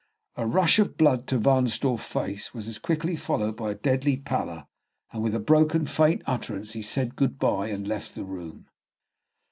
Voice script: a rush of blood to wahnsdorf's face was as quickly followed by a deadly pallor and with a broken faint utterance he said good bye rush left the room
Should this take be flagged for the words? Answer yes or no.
yes